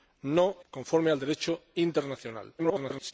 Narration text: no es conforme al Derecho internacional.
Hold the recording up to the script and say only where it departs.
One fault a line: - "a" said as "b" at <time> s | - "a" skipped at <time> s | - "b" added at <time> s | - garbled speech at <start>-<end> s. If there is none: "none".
- "es" skipped at 0.6 s
- garbled speech at 2.6-3.1 s